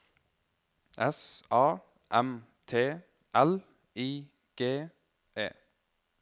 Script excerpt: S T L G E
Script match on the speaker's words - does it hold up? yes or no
no